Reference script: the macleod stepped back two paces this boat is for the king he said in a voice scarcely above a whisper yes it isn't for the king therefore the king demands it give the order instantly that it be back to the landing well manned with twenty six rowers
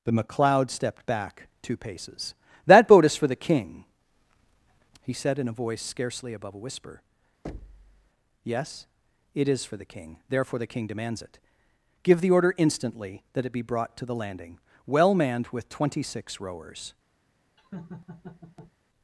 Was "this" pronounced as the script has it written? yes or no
no